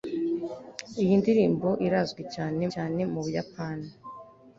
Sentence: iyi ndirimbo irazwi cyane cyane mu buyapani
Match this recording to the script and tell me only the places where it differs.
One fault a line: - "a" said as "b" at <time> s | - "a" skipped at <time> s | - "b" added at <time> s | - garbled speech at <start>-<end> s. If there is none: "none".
none